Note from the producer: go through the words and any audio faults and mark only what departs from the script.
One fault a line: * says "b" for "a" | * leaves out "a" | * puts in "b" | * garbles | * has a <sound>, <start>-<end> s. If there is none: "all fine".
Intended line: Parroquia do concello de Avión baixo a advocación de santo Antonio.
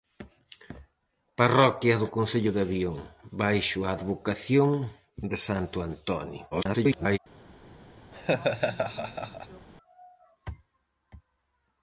* garbles
* has a laugh, 8.1-9.7 s